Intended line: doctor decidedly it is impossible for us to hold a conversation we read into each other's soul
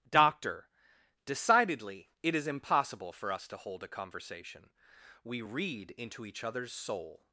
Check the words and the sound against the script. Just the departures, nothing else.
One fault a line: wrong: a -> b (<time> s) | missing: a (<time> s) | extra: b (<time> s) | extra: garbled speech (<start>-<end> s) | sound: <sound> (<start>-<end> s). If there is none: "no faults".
no faults